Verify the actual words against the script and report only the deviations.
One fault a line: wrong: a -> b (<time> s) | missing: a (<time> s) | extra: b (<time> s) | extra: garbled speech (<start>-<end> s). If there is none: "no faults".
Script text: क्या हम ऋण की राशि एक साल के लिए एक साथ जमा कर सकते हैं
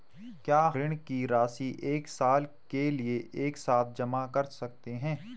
missing: हम (0.6 s)